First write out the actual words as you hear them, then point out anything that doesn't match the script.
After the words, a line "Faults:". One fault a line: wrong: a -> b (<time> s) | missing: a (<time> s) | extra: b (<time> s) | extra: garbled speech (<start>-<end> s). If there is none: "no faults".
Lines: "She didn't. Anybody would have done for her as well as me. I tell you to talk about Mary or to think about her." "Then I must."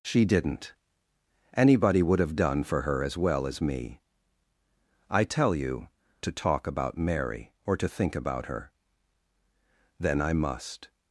"She didn't. Anybody would have done for her as well as me. I tell you to talk about Mary or to think about her." "Then I must."
Faults:
no faults